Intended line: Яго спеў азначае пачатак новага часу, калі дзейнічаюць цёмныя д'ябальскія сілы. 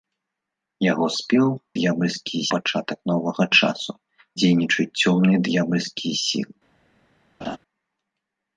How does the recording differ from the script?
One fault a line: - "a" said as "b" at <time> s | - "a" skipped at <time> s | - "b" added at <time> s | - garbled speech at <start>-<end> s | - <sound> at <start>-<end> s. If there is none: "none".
- "азначае" said as "д'ябальскія" at 1.8 s
- "калі" skipped at 3.9 s
- laugh at 7.4-7.6 s